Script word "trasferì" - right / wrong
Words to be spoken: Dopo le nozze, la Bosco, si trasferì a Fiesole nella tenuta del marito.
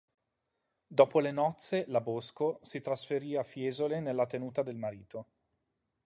right